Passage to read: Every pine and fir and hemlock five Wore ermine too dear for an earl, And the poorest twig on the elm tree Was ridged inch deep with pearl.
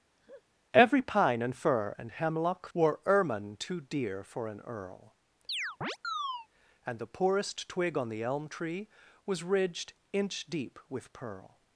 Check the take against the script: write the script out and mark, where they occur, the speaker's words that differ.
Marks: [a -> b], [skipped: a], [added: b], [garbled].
Every pine and fir and hemlock [skipped: five] Wore ermine too dear for an earl, And the poorest twig on the elm tree Was ridged inch deep with pearl.